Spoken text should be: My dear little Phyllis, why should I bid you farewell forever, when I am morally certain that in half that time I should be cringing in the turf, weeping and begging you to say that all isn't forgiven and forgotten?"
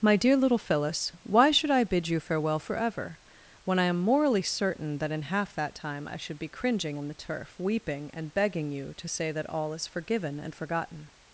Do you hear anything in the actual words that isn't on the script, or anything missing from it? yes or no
yes